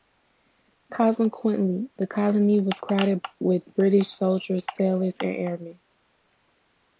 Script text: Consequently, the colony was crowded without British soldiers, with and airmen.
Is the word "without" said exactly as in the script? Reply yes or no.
no